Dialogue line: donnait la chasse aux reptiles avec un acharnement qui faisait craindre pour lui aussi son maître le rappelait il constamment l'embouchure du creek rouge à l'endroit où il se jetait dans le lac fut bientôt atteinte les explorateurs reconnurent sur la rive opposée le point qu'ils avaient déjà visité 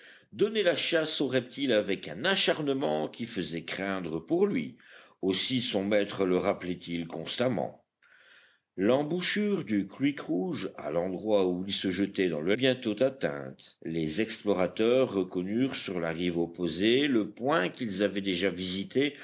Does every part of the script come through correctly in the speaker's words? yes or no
no